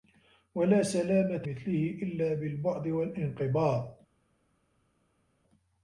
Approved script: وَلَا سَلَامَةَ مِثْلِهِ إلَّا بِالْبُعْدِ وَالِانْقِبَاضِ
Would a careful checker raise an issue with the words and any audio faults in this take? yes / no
no